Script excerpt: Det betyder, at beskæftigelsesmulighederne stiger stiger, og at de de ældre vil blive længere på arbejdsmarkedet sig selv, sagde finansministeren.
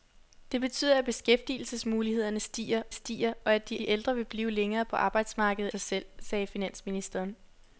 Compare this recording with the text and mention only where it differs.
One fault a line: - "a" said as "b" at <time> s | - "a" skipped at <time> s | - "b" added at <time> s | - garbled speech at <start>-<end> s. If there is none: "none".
none